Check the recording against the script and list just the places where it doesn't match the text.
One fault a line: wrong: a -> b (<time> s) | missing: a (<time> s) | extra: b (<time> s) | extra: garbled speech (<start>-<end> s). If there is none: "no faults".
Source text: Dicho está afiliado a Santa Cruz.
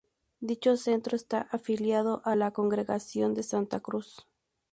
extra: centro (0.8 s)
extra: la Congregación de (2.3 s)